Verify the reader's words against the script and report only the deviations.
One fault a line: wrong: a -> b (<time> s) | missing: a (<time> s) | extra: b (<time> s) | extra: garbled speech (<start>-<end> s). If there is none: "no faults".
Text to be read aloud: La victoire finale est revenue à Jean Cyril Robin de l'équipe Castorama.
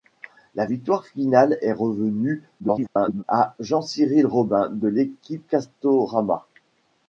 extra: garbled speech (2.6-3.2 s)